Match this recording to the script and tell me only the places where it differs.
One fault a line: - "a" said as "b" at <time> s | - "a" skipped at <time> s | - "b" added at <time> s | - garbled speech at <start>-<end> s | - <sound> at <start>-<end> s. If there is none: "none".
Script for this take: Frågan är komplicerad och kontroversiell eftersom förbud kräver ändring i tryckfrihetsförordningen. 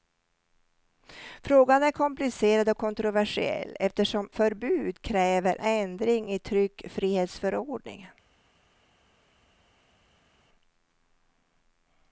none